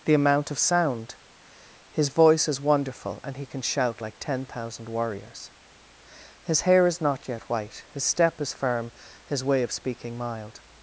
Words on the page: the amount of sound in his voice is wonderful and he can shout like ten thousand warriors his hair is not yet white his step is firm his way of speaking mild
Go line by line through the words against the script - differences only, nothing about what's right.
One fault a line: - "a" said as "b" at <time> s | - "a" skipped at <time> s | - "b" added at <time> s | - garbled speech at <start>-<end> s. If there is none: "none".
- "in" skipped at 1.1 s